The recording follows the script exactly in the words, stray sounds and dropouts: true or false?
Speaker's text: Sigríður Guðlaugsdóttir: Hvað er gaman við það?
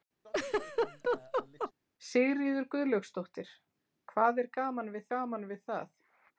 false